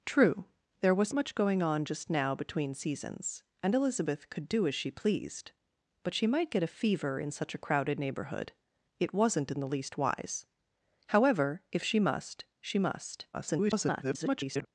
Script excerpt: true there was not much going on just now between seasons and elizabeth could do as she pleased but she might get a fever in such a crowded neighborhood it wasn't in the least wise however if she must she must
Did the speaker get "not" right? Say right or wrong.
wrong